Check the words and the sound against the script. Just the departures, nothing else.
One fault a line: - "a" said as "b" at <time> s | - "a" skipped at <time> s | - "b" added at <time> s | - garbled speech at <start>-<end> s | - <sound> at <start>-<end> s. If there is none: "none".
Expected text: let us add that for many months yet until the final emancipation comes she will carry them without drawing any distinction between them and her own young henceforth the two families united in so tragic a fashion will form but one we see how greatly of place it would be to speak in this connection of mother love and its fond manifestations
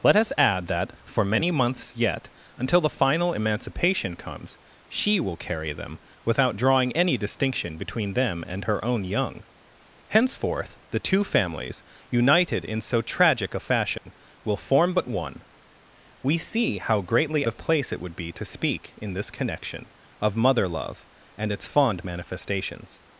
- dropout at 14.0-14.1 s